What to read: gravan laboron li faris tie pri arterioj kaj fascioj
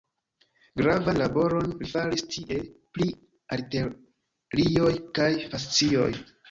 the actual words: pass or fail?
pass